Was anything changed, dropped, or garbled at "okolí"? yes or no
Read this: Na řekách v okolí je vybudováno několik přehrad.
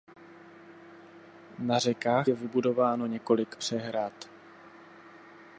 yes